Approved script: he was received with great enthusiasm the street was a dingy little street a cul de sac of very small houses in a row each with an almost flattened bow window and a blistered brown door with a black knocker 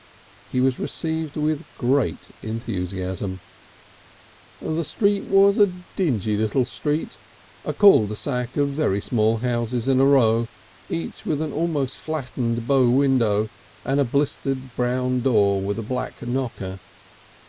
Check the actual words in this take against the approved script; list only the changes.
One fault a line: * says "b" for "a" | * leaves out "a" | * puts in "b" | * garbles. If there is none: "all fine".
all fine